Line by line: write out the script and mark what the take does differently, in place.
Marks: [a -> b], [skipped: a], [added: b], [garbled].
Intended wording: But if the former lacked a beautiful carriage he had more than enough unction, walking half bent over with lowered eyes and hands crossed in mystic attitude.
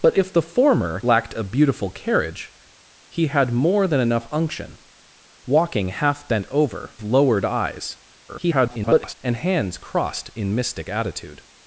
But if the former lacked a beautiful carriage he had more than enough unction, walking half bent over [skipped: with] lowered eyes [garbled] and hands crossed in mystic attitude.